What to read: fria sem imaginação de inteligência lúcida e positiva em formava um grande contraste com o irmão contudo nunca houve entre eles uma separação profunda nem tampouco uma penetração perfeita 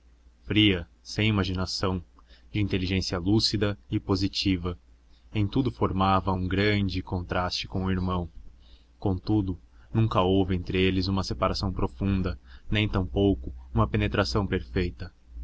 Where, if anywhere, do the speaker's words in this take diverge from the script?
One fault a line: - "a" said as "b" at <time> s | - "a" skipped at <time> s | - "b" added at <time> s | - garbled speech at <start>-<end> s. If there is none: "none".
- "tudo" added at 5.5 s